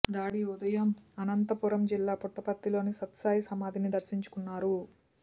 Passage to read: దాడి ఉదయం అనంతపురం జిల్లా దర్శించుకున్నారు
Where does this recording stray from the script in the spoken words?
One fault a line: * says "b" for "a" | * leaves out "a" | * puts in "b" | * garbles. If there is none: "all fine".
* puts in "పుట్టపర్తిలోని సత్యసాయి సమాధిని"